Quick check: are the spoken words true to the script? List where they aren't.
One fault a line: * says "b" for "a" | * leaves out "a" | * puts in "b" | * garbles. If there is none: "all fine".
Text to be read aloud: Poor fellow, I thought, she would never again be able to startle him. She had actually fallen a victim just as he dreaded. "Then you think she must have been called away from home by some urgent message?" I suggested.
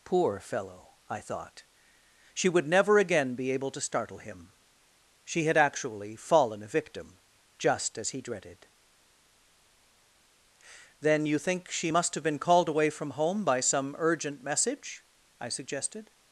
all fine